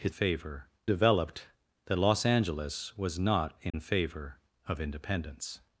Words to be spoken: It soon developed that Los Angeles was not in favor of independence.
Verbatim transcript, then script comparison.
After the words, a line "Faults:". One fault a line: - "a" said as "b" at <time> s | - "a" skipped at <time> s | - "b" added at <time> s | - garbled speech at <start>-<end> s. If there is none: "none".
It favor developed that Los Angeles was not in favor of independence.
Faults:
- "soon" said as "favor" at 0.1 s